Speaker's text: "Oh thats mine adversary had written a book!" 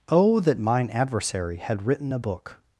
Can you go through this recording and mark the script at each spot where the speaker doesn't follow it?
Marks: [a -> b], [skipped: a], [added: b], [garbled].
"Oh [thats -> that] mine adversary had written a book!"